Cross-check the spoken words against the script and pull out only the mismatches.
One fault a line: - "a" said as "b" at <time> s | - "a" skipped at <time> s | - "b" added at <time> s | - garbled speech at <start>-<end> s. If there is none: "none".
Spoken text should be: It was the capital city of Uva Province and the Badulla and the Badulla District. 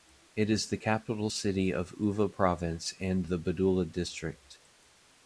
- "was" said as "is" at 0.5 s
- "and the Badulla" skipped at 3.9 s